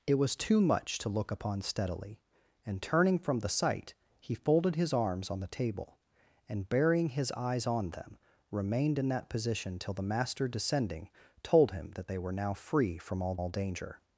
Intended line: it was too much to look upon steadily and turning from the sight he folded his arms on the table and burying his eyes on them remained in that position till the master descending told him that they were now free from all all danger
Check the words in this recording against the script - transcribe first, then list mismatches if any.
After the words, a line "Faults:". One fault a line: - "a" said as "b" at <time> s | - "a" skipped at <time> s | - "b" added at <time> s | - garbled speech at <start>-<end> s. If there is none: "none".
it was too much to look upon steadily and turning from the sight he folded his arms on the table and burying his eyes on them remained in that position till the master descending told him that they were now free from all all danger
Faults:
none